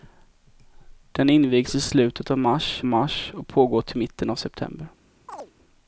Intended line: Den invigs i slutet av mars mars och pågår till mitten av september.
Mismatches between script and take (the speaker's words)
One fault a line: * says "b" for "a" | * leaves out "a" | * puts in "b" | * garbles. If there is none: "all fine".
all fine